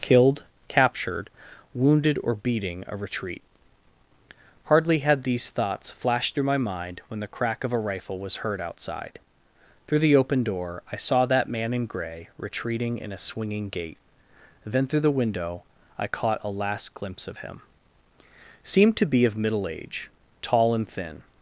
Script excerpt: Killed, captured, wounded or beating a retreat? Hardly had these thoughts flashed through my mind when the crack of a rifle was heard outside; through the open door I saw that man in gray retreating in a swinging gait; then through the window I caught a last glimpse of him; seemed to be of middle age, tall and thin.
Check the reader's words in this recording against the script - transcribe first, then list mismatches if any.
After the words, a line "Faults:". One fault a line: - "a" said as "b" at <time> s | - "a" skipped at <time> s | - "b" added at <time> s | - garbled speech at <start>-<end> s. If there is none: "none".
Killed, captured, wounded or beating a retreat? Hardly had these thoughts flashed through my mind when the crack of a rifle was heard outside; through the open door I saw that man in gray retreating in a swinging gait; then through the window I caught a last glimpse of him; seemed to be of middle age, tall and thin.
Faults:
none